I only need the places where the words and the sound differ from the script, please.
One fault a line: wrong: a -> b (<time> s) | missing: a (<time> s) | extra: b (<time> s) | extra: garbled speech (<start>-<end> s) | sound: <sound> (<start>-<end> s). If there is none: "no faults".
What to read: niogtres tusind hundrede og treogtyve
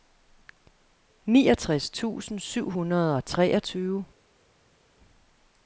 extra: syv (2.4 s)